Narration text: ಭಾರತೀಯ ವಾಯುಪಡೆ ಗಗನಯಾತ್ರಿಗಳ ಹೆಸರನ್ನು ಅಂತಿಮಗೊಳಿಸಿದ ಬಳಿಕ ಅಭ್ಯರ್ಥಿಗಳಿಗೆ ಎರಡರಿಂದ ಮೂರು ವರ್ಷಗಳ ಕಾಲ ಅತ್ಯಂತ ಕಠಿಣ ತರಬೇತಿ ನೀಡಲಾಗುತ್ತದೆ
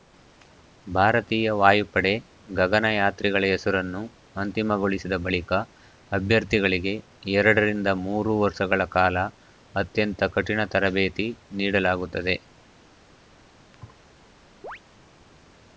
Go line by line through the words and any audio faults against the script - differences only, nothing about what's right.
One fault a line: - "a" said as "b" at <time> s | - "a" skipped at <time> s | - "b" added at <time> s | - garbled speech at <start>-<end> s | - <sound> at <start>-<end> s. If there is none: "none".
- thud at 13.7-14.0 s
- chirp at 14.6-14.8 s